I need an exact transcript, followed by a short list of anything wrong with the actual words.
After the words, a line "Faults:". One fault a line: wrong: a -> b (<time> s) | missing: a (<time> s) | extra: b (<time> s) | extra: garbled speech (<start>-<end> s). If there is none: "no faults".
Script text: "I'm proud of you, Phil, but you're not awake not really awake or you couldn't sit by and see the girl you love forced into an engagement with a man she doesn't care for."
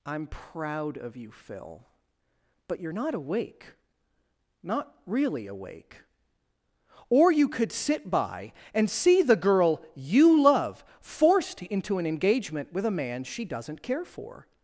"I'm proud of you, Phil, but you're not awake not really awake or you could sit by and see the girl you love forced into an engagement with a man she doesn't care for."
Faults:
wrong: couldn't -> could (7.5 s)